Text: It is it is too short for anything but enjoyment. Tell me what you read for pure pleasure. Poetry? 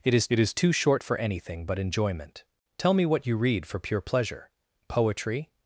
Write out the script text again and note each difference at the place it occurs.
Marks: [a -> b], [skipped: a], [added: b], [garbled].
It is it is too short for anything but enjoyment. Tell me what you read for pure pleasure. Poetry?